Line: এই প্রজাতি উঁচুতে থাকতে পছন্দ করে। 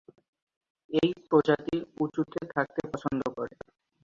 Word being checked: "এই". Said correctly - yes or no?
yes